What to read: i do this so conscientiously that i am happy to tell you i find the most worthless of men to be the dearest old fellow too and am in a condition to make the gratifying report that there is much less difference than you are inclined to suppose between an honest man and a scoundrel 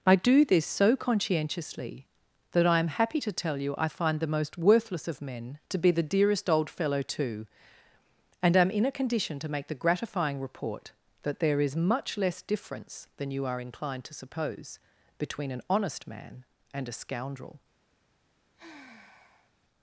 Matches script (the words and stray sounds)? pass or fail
fail